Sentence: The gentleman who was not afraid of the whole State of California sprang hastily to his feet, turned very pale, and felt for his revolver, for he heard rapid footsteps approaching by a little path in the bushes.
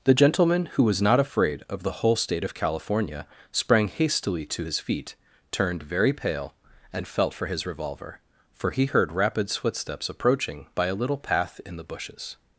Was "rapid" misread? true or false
true